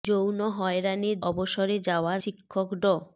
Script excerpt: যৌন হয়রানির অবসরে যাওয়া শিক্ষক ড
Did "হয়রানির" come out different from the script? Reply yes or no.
no